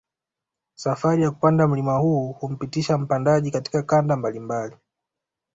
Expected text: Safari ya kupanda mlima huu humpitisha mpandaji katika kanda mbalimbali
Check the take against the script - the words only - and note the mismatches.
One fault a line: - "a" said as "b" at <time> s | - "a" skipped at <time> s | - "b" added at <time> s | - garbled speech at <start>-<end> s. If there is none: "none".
none